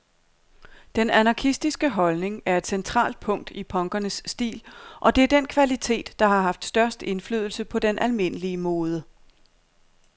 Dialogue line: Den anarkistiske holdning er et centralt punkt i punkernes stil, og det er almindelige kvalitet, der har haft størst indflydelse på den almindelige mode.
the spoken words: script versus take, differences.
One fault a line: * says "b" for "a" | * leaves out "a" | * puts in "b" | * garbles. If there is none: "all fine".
* says "den" for "almindelige"